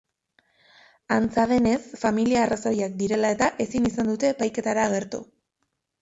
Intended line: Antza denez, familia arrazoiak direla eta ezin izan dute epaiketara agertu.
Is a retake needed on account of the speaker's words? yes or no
no